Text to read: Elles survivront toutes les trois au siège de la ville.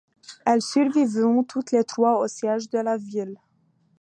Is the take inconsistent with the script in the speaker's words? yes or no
no